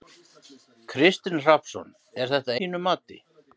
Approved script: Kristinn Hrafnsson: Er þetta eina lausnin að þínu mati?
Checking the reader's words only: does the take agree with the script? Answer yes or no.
no